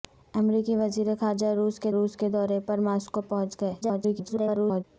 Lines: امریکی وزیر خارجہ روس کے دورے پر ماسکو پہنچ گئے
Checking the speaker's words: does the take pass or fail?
fail